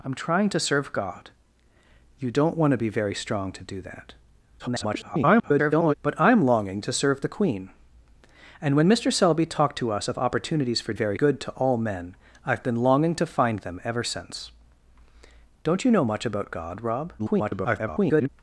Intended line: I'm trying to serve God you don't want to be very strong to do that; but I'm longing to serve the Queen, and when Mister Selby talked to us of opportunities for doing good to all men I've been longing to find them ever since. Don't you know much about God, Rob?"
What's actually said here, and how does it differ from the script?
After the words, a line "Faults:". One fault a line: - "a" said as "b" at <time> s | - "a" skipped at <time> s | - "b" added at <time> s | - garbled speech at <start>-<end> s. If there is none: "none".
I'm trying to serve God you don't want to be very strong to do that; [garbled] but I'm longing to serve the Queen, and when Mister Selby talked to us of opportunities for very good to all men I've been longing to find them ever since. Don't you know much about God, Rob?" [garbled]
Faults:
- garbled speech at 4.6-5.9 s
- "doing" said as "very" at 10.9 s
- garbled speech at 17.2-18.3 s